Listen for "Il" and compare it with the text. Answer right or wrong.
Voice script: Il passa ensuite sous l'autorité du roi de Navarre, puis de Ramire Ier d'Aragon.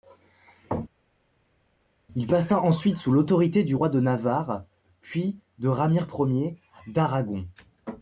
right